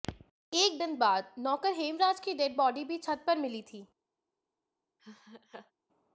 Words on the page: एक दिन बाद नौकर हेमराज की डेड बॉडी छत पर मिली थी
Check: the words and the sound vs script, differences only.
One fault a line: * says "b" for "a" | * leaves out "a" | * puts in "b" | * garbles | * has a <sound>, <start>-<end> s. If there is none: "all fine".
* puts in "भी"
* has a laugh, 5.0-5.7 s